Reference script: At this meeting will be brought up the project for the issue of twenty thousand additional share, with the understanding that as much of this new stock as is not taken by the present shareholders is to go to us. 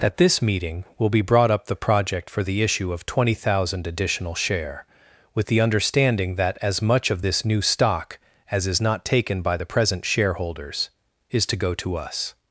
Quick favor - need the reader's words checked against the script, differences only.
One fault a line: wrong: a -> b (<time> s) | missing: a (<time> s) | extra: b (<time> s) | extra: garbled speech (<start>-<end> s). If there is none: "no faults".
no faults